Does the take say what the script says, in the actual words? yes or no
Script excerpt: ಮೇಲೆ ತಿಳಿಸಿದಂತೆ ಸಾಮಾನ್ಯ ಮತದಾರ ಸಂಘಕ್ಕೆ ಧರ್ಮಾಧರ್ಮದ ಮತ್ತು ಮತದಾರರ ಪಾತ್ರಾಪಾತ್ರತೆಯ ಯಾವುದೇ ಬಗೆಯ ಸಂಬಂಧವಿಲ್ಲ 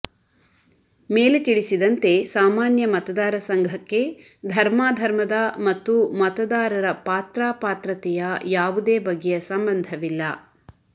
yes